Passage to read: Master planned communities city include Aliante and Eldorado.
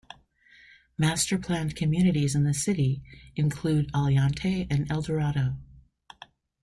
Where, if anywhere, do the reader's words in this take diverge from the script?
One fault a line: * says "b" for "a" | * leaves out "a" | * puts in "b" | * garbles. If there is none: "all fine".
* puts in "in the"